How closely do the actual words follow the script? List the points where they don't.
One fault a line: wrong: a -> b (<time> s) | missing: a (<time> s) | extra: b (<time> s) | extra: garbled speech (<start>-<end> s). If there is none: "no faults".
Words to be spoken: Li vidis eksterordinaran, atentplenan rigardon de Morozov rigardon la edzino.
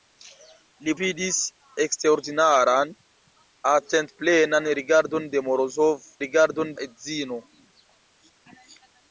no faults